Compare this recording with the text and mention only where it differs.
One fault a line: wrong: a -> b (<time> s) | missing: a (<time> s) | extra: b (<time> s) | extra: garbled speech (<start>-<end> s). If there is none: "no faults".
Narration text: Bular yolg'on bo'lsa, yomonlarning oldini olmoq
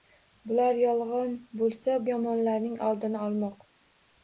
no faults